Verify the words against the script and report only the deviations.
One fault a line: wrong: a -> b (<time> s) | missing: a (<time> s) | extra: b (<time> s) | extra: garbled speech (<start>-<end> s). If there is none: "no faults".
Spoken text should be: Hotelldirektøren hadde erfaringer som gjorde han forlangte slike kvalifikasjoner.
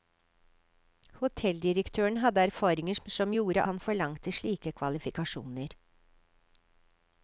no faults